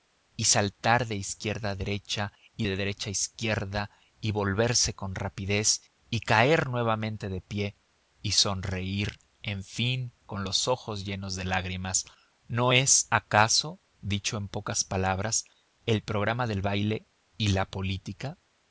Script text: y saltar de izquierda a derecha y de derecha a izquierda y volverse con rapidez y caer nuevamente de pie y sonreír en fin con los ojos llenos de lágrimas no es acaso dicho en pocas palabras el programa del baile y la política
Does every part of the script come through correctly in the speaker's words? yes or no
yes